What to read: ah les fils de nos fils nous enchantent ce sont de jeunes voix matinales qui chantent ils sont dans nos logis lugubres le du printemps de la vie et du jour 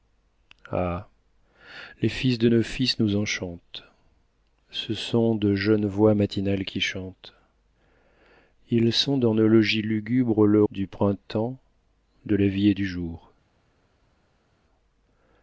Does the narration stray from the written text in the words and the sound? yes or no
no